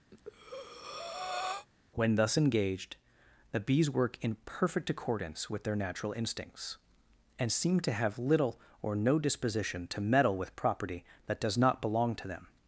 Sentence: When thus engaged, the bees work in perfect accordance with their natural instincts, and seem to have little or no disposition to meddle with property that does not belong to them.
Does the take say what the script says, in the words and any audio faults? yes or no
no